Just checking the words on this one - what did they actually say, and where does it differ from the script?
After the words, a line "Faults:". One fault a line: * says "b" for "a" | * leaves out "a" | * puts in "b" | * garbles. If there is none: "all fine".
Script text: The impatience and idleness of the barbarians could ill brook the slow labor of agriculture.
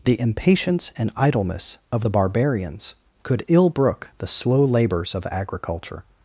The impatience and idleness of the barbarians could ill brook the slow labors of agriculture.
Faults:
* says "labors" for "labor"